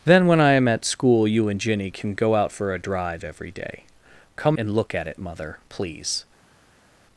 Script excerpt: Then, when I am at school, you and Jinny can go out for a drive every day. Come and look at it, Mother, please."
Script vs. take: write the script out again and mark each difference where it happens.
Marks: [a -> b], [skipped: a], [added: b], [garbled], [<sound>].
Then, when I am at school, you and Jinny can go out for a drive every day. Come and look at it, Mother, please."